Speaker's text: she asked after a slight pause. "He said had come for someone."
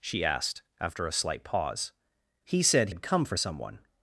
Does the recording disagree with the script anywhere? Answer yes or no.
no